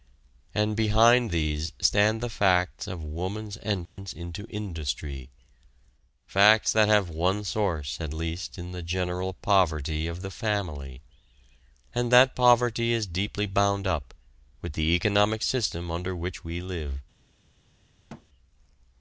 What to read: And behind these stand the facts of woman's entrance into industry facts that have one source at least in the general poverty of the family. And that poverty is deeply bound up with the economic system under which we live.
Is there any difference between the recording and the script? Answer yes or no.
no